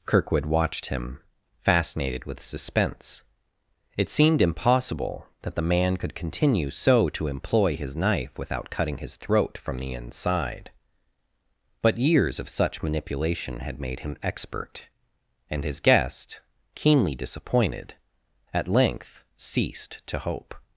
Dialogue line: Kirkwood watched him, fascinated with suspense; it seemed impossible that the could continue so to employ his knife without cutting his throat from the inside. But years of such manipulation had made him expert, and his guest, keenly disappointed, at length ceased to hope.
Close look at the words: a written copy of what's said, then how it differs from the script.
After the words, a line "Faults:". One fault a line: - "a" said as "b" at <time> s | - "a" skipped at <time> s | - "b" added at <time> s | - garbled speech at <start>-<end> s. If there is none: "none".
Kirkwood watched him, fascinated with suspense; it seemed impossible that the man could continue so to employ his knife without cutting his throat from the inside. But years of such manipulation had made him expert, and his guest, keenly disappointed, at length ceased to hope.
Faults:
- "man" added at 5.7 s